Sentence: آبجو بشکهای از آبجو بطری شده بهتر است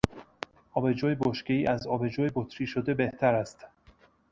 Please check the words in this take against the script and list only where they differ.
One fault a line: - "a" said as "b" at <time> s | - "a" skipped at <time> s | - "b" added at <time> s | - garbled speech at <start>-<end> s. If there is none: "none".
none